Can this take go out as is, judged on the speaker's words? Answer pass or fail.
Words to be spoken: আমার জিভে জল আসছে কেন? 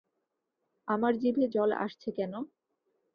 pass